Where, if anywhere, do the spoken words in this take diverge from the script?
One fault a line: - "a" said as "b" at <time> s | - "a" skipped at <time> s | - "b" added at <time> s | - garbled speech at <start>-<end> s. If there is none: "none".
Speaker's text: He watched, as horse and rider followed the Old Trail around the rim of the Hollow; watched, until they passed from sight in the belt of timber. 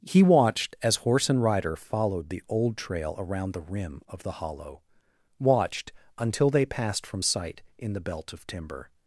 none